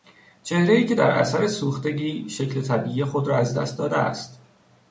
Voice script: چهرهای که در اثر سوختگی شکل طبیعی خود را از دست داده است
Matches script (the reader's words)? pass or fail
pass